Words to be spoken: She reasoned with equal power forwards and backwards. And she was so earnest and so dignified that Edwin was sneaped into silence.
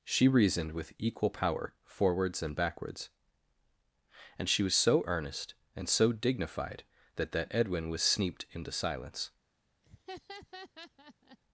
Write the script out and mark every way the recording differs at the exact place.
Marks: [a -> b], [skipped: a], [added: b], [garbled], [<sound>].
She reasoned with equal power forwards and backwards. And she was so earnest and so dignified that [added: that] Edwin was sneaped into silence. [laugh]